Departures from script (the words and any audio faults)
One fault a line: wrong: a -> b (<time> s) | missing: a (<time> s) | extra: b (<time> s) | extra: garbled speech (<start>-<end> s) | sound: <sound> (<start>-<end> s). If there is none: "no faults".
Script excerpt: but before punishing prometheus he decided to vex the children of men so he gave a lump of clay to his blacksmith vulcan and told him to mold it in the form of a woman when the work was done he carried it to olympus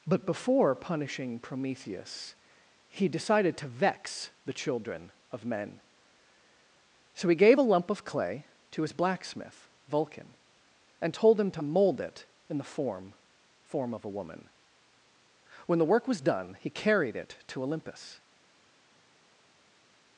extra: form (13.6 s)